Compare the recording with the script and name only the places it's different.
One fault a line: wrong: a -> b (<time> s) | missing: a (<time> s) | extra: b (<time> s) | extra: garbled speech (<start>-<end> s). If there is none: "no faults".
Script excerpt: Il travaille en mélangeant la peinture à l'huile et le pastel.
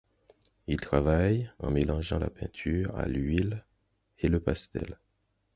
no faults